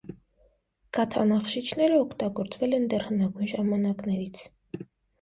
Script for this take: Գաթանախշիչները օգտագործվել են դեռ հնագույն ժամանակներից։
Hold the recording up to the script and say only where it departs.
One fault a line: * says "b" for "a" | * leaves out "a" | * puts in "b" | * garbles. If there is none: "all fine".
all fine